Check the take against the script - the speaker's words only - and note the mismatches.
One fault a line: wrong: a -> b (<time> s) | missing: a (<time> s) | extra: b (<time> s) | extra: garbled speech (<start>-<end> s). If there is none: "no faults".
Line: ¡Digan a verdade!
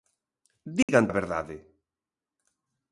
no faults